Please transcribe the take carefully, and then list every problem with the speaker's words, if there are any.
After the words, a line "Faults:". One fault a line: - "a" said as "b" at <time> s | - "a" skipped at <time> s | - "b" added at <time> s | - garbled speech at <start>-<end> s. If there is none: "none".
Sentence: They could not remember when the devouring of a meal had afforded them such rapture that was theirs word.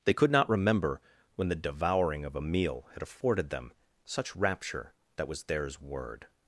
They could not remember when the devouring of a meal had afforded them such rapture that was theirs word.
Faults:
none